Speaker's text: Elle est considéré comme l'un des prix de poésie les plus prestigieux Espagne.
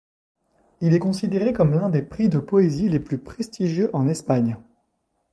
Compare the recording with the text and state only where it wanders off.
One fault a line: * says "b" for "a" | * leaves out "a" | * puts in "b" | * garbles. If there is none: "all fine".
* says "Il" for "Elle"
* puts in "en"